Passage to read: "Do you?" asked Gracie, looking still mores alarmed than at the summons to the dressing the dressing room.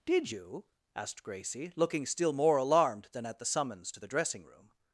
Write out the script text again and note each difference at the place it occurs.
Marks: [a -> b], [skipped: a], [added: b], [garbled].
["Do -> Did] you?" asked Gracie, looking still [mores -> more] alarmed than at the summons to the dressing [skipped: the dressing] room.